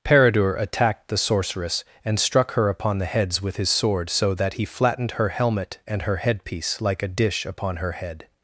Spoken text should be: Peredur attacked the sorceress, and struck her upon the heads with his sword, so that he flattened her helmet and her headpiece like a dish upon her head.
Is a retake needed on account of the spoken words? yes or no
no